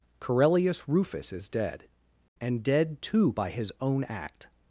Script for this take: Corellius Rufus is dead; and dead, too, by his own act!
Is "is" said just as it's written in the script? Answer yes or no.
yes